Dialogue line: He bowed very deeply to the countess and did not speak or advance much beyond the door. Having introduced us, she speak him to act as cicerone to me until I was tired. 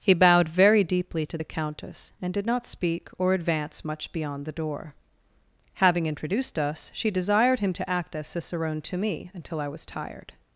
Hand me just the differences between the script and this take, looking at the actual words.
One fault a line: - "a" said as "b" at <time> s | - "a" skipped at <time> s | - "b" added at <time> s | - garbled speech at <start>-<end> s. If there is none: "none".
- "speak" said as "desired" at 7.1 s